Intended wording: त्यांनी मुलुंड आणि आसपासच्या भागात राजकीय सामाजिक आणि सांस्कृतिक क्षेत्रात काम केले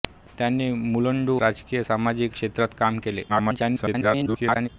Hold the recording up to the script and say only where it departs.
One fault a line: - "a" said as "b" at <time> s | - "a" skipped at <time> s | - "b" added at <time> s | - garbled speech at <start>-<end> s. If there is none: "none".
- "आणि आसपासच्या भागात" skipped at 1.3 s
- "आणि सांस्कृतिक" skipped at 2.4 s
- garbled speech at 3.3-4.7 s